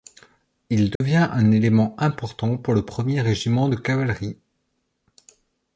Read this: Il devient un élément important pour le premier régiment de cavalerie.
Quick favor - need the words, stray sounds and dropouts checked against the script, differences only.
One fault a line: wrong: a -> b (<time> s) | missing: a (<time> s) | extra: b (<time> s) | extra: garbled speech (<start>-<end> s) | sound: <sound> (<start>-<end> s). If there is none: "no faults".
sound: dropout (1.0-1.0 s)